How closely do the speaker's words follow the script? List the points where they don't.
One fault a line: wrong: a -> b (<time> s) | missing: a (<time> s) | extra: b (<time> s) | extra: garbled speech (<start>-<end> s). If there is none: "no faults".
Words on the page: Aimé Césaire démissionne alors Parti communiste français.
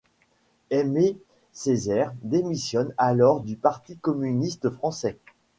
extra: du (3.4 s)